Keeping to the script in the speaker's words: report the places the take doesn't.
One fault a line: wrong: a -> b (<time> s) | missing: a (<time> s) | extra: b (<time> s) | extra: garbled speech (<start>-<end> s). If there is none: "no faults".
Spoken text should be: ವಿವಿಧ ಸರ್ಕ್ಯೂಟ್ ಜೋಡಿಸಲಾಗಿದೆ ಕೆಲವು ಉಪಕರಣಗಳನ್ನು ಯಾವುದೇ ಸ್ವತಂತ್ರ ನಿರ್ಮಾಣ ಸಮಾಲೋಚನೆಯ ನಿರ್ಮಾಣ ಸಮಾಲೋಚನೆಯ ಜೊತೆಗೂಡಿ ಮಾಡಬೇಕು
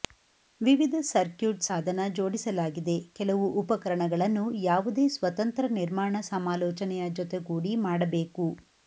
extra: ಸಾಧನ (1.6 s)
missing: ನಿರ್ಮಾಣ ಸಮಾಲೋಚನೆಯ (7.1 s)